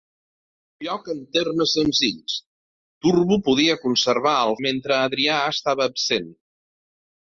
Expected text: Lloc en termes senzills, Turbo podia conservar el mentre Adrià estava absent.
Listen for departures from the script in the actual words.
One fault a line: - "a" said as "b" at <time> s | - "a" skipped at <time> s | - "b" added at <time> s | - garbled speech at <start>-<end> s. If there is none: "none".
none